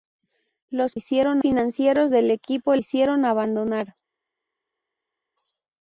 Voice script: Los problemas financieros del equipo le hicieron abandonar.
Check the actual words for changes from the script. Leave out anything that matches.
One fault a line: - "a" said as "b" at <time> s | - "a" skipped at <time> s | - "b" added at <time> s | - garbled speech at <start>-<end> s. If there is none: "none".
- "problemas" said as "hicieron" at 0.9 s
- "le" skipped at 2.8 s